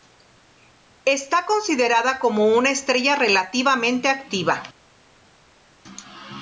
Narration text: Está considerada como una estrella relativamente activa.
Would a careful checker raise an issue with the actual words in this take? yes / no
no